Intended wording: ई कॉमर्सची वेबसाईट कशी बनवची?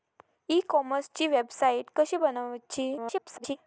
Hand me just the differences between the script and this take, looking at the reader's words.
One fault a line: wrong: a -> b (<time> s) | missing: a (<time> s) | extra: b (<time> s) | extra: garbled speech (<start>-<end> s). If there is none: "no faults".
extra: garbled speech (3.0-3.6 s)